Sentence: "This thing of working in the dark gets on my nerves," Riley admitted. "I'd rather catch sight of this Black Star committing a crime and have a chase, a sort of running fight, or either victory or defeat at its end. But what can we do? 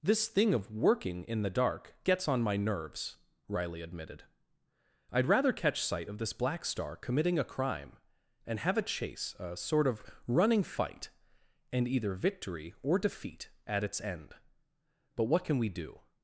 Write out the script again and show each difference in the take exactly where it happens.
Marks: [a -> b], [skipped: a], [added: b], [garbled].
"This thing of working in the dark gets on my nerves," Riley admitted. "I'd rather catch sight of this Black Star committing a crime and have a chase, a sort of running fight, [or -> and] either victory or defeat at its end. But what can we do?